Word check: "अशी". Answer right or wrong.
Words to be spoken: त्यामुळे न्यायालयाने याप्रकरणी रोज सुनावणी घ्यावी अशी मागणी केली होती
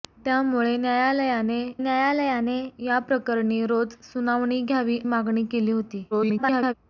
wrong